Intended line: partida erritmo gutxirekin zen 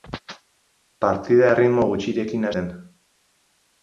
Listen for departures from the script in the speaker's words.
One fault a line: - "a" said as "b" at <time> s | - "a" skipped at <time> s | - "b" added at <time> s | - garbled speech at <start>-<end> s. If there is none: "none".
none